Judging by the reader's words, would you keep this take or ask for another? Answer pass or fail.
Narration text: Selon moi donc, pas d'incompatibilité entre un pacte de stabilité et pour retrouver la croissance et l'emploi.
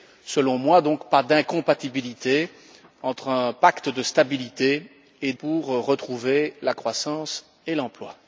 pass